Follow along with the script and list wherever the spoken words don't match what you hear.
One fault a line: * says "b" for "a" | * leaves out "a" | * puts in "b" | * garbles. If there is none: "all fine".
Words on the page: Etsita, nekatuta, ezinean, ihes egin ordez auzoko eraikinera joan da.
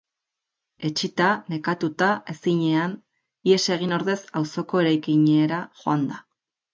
all fine